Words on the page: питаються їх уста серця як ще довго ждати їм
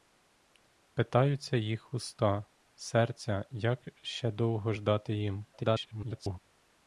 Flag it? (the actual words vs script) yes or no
yes